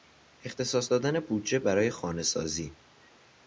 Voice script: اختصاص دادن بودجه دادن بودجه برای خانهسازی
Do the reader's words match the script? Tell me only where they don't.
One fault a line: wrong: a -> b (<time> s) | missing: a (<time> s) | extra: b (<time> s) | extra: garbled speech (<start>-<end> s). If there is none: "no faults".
missing: دادن بودجه (1.6 s)